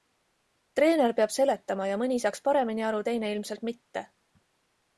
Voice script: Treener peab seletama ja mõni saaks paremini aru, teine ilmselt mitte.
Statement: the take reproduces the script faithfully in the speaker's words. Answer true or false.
true